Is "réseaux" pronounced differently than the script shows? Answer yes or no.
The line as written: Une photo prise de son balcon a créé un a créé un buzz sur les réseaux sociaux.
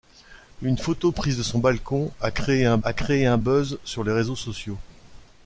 no